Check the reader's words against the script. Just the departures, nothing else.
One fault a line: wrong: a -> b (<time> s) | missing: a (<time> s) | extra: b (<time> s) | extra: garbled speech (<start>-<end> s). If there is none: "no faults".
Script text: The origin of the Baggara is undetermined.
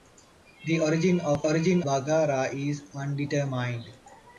wrong: the -> origin (1.4 s)